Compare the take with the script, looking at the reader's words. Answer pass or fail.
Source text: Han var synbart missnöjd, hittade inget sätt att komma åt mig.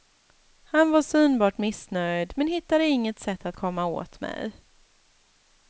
fail